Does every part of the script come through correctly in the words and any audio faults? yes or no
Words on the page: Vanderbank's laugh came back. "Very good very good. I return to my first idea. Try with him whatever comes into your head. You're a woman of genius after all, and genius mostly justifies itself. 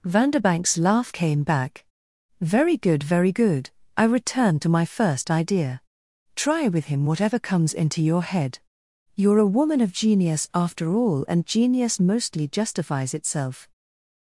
yes